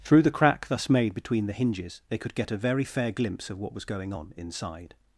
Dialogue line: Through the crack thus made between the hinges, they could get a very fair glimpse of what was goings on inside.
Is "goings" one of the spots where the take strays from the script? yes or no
yes